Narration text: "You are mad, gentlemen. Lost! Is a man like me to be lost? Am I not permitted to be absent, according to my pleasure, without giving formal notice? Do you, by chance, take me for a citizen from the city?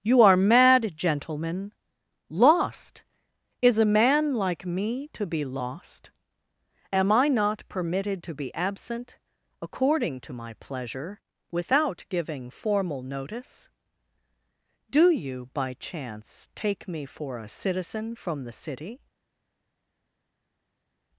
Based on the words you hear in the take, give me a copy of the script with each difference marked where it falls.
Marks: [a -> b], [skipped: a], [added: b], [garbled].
"You are mad, gentlemen. Lost! Is a man like me to be lost? Am I not permitted to be absent, according to my pleasure, without giving formal notice? Do you, by chance, take me for a citizen from the city?